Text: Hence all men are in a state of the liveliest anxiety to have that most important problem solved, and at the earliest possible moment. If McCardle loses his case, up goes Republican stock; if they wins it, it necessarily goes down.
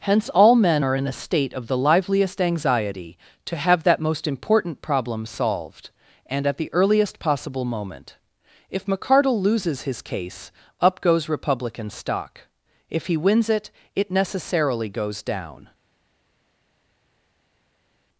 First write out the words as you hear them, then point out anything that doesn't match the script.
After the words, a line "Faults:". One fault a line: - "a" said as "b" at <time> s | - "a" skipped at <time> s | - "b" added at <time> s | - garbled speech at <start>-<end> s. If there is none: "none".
Hence all men are in a state of the liveliest anxiety to have that most important problem solved, and at the earliest possible moment. If McCardle loses his case, up goes Republican stock; if he wins it, it necessarily goes down.
Faults:
- "they" said as "he" at 13.1 s